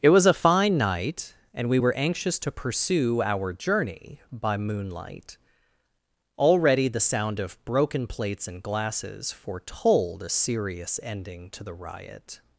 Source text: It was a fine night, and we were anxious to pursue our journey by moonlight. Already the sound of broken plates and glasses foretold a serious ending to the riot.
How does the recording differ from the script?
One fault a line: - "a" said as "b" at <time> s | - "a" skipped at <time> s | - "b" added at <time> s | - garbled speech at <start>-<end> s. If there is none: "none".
none